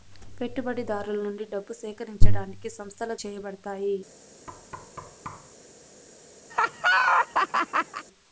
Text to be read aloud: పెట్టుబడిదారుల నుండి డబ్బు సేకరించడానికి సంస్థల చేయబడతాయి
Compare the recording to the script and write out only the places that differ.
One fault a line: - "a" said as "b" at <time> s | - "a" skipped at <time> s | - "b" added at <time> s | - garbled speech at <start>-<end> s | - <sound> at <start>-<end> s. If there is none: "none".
- thud at 4.5-5.6 s
- laugh at 6.5-8.1 s